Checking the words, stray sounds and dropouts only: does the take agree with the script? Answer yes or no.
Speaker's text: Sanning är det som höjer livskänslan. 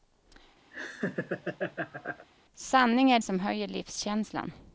no